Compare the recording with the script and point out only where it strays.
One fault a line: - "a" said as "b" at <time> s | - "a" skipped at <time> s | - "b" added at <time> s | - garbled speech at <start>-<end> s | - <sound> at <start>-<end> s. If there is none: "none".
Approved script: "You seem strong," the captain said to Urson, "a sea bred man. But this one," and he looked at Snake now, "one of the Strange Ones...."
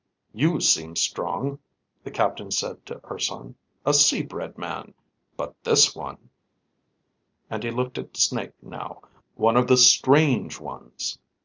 none